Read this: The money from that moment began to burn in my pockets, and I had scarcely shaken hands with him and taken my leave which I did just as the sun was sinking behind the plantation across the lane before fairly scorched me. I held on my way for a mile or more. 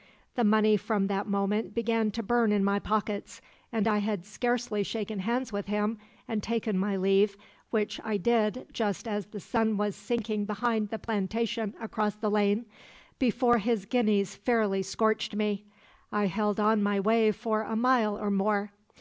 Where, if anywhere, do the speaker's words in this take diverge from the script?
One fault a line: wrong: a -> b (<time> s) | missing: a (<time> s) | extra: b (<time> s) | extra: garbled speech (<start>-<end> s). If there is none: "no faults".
extra: his guineas (13.6 s)